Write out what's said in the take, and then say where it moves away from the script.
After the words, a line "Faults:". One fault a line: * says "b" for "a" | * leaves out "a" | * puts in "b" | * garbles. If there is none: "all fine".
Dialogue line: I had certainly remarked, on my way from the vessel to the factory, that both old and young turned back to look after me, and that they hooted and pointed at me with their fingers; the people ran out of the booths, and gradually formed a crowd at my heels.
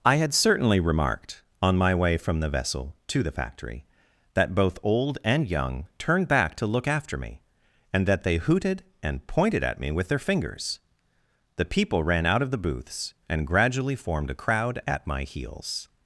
I had certainly remarked, on my way from the vessel to the factory, that both old and young turned back to look after me, and that they hooted and pointed at me with their fingers; the people ran out of the booths, and gradually formed a crowd at my heels.
Faults:
all fine